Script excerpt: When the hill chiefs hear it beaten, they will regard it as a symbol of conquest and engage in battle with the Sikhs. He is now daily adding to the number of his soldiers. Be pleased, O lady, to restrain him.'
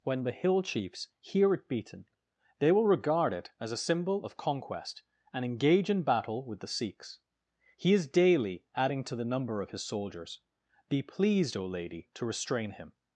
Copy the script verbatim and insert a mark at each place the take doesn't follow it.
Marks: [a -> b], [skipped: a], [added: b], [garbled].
When the hill chiefs hear it beaten, they will regard it as a symbol of conquest and engage in battle with the Sikhs. He is [skipped: now] daily adding to the number of his soldiers. Be pleased, O lady, to restrain him.'